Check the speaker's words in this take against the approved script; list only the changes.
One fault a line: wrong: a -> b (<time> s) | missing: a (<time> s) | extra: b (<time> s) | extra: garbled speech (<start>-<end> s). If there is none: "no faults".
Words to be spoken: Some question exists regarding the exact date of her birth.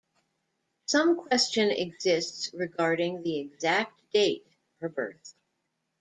missing: of (4.5 s)